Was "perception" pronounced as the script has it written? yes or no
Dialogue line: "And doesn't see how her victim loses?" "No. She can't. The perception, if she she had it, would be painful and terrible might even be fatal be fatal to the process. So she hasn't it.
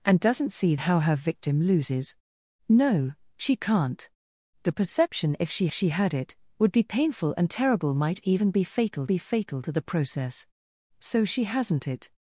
yes